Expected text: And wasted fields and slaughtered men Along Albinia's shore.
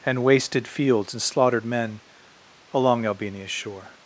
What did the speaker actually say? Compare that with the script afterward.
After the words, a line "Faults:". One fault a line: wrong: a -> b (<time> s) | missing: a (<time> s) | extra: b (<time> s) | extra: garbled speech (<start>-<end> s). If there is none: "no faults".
And wasted fields and slaughtered men Along Albinia's shore.
Faults:
no faults